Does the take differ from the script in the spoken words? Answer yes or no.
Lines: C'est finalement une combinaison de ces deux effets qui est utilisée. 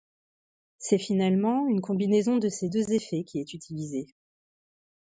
no